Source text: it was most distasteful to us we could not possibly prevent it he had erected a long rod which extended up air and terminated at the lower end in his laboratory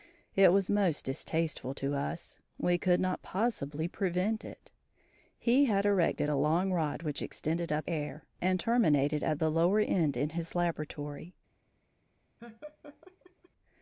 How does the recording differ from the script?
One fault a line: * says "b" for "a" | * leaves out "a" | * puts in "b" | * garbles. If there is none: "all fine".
all fine